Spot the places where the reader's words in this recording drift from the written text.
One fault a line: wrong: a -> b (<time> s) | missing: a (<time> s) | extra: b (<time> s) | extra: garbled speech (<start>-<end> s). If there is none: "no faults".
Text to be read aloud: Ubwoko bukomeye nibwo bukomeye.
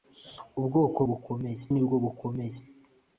no faults